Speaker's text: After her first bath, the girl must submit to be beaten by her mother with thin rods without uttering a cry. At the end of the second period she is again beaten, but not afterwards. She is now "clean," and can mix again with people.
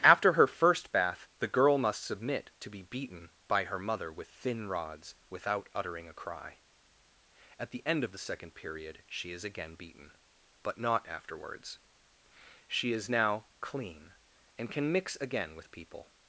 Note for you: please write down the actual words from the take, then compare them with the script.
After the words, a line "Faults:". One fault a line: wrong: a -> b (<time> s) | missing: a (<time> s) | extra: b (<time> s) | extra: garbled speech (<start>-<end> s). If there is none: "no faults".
After her first bath, the girl must submit to be beaten by her mother with thin rods without uttering a cry. At the end of the second period she is again beaten, but not afterwards. She is now "clean," and can mix again with people.
Faults:
no faults